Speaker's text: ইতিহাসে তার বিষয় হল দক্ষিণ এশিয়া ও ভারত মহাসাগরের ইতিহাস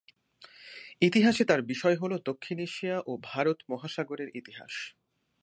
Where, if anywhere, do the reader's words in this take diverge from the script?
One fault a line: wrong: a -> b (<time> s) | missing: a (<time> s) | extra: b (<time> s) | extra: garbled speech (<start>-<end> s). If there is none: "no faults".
no faults